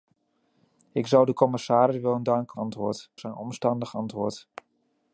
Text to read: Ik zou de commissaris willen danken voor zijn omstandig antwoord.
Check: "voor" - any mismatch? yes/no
yes